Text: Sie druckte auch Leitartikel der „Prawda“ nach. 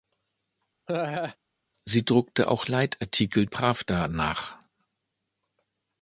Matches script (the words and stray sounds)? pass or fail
fail